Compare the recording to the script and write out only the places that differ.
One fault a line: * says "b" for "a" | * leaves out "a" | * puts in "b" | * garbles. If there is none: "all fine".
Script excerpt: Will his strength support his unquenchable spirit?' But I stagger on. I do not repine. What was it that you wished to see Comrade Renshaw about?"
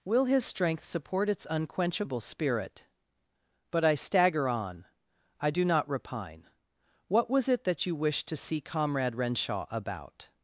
* says "its" for "his"